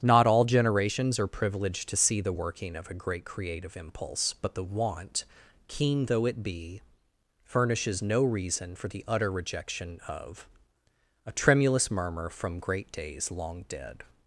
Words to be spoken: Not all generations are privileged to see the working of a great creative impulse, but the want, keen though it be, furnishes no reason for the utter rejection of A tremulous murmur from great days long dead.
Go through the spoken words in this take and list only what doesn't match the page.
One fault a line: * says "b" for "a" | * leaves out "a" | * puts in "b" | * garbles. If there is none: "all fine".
all fine